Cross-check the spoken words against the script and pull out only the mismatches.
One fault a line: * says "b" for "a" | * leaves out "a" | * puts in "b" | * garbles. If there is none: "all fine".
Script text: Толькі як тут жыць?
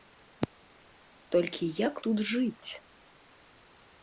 all fine